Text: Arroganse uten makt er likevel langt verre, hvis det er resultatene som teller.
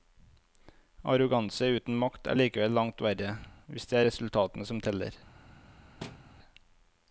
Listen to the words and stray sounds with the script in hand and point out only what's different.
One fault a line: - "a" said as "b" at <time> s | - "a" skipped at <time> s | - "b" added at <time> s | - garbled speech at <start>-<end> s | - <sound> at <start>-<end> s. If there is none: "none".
- thud at 6.0-6.3 s